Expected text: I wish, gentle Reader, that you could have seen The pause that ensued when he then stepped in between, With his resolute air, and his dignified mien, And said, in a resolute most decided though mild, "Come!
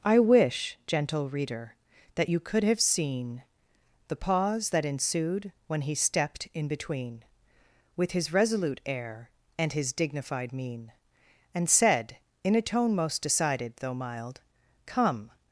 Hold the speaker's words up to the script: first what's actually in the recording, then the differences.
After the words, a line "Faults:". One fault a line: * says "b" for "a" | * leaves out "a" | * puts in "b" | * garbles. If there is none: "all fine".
I wish, gentle Reader, that you could have seen The pause that ensued when he stepped in between, With his resolute air, and his dignified mien, And said, in a tone most decided though mild, "Come!
Faults:
* leaves out "then"
* says "tone" for "resolute"